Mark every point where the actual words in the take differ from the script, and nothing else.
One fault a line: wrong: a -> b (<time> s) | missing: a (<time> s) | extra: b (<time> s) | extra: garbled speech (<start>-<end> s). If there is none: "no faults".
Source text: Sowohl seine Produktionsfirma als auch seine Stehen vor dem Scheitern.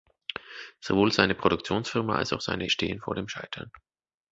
no faults